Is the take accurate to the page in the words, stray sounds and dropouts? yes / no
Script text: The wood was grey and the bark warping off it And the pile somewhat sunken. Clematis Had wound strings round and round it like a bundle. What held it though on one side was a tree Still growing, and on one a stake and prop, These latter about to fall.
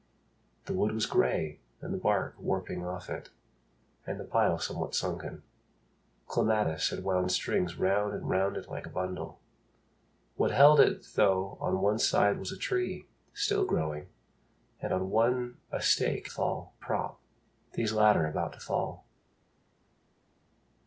no